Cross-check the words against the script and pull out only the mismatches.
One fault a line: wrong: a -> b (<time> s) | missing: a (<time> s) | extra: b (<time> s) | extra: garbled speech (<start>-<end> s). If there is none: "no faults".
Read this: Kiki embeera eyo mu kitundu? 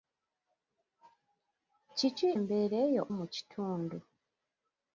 no faults